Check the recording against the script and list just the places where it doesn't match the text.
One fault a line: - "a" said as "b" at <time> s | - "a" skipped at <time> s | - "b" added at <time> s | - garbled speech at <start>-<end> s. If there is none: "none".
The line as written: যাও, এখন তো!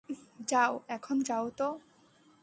- "যাও" added at 1.2 s